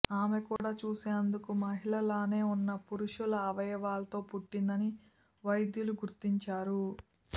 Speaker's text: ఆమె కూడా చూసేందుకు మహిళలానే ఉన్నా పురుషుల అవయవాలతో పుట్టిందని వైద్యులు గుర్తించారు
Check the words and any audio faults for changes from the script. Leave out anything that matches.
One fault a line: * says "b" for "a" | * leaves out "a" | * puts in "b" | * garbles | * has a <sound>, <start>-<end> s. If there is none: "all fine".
* has a dropout, 0.6-0.6 s